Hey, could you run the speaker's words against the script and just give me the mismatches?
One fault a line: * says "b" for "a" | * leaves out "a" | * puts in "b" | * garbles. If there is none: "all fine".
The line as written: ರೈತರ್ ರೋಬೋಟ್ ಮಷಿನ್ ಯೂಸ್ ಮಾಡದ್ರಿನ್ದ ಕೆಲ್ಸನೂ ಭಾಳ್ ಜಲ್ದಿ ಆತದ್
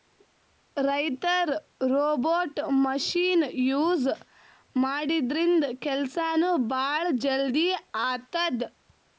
all fine